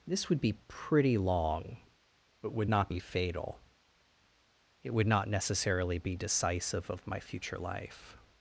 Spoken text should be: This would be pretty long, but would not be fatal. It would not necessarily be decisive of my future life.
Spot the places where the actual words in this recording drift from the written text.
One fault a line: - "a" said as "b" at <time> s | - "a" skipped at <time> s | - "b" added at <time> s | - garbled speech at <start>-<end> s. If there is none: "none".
none